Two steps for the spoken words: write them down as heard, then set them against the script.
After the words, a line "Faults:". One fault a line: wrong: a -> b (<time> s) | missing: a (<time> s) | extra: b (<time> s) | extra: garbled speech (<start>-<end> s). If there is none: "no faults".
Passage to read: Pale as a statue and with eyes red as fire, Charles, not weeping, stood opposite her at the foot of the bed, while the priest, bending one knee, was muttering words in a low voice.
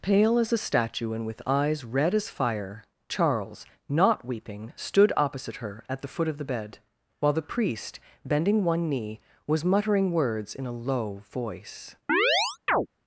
Pale as a statue and with eyes red as fire, Charles, not weeping, stood opposite her at the foot of the bed, while the priest, bending one knee, was muttering words in a low voice.
Faults:
no faults